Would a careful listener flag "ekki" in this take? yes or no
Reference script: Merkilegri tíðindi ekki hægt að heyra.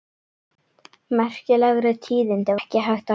no